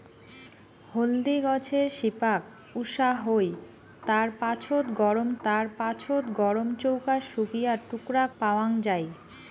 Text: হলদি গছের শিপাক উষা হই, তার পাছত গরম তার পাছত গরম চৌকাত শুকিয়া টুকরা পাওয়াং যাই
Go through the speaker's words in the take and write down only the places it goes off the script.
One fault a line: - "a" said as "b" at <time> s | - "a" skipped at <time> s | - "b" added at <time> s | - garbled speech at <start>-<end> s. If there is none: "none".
none